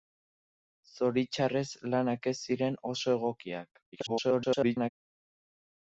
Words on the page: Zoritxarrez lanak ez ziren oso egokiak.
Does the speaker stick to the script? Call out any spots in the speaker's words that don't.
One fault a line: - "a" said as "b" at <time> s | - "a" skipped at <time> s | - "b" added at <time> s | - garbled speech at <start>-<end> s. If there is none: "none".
- garbled speech at 3.9-4.9 s